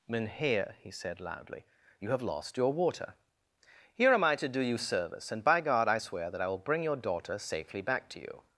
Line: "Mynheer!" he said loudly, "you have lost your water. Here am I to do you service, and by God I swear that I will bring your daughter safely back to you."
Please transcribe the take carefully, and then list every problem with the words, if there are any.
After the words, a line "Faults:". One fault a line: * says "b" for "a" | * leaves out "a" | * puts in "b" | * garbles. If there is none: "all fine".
"Mynheer!" he said loudly, "you have lost your water. Here am I to do you service, and by God I swear that I will bring your daughter safely back to you."
Faults:
all fine